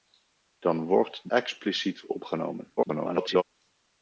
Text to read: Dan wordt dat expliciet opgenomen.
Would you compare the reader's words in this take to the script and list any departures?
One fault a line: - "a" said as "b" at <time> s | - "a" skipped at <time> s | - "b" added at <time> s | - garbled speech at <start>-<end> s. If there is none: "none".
- "dat" skipped at 1.3 s
- garbled speech at 2.8-3.4 s